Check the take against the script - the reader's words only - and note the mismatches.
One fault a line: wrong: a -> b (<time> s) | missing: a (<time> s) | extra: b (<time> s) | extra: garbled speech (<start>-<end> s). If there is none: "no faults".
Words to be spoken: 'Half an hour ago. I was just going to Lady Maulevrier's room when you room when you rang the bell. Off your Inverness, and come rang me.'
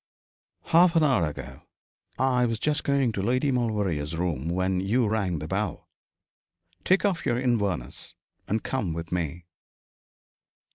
missing: room when you (5.1 s)
extra: Take (6.9 s)
wrong: rang -> with (8.9 s)